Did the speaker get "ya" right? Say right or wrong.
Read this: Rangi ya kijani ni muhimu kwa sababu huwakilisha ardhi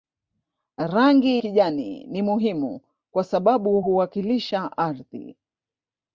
wrong